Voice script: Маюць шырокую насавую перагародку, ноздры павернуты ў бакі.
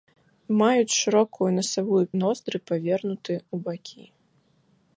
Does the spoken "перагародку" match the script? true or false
false